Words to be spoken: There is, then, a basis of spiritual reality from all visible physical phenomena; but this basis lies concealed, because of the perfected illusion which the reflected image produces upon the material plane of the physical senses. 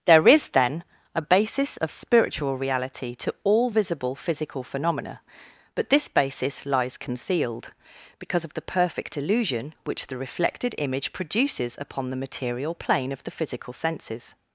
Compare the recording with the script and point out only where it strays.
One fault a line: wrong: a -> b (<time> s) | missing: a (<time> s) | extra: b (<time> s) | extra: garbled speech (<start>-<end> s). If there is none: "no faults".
wrong: from -> to (3.2 s)
wrong: perfected -> perfect (8.6 s)